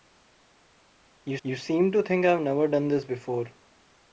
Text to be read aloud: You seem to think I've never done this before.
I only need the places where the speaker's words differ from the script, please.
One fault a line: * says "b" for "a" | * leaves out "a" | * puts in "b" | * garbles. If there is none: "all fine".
* puts in "you"